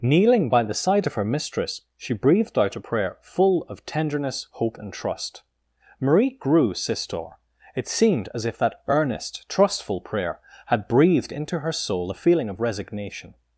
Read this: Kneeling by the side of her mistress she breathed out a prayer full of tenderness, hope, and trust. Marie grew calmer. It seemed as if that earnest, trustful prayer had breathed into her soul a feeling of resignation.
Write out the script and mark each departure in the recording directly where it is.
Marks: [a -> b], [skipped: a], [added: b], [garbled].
Kneeling by the side of her mistress she breathed out a prayer full of tenderness, hope, and trust. Marie grew [calmer. -> sistor] It seemed as if that earnest, trustful prayer had breathed into her soul a feeling of resignation.